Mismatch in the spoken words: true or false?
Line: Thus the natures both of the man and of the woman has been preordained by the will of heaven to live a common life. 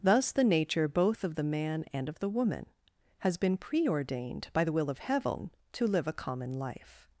true